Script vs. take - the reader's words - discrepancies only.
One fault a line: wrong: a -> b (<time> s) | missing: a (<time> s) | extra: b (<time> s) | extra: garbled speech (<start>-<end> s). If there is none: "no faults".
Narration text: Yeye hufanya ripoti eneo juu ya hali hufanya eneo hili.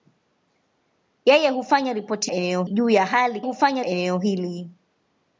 no faults